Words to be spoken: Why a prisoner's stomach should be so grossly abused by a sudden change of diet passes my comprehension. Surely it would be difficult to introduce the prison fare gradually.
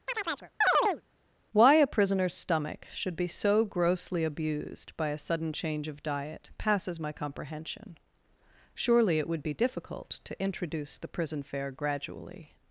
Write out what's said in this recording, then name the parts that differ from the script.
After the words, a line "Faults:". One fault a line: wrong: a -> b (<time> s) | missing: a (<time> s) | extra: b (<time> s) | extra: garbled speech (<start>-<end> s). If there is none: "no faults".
Why a prisoner's stomach should be so grossly abused by a sudden change of diet passes my comprehension. Surely it would be difficult to introduce the prison fare gradually.
Faults:
no faults